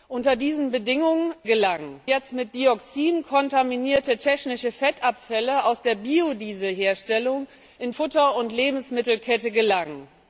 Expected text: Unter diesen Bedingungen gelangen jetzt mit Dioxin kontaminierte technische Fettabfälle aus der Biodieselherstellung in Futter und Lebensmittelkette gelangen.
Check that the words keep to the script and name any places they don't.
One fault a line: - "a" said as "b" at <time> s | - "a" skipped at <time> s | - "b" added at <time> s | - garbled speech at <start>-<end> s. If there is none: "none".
none